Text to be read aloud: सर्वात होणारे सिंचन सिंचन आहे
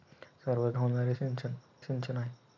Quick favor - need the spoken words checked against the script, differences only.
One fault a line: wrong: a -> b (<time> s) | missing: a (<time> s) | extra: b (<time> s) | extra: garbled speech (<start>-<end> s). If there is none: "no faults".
no faults